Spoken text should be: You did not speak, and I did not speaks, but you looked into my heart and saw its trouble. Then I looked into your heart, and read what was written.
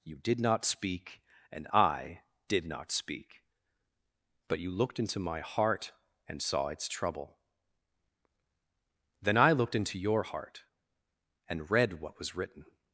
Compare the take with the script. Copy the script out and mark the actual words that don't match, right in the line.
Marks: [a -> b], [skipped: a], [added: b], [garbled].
You did not speak, and I did not [speaks, -> speak] but you looked into my heart and saw its trouble. Then I looked into your heart, and read what was written.